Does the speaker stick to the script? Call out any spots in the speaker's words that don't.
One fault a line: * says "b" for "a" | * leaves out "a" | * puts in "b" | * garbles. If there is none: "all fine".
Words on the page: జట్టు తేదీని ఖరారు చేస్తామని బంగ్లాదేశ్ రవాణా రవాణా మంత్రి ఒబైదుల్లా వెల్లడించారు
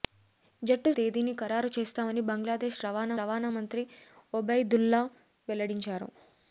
all fine